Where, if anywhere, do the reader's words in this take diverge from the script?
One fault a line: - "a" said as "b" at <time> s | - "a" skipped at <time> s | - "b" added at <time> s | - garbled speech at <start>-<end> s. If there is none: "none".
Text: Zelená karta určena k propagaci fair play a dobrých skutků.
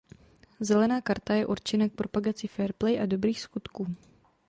- "je" added at 1.3 s